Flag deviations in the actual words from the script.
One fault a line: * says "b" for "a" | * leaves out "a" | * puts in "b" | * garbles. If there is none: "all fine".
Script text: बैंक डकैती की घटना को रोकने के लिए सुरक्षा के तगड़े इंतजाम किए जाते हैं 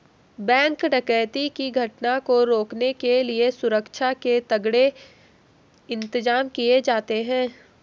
all fine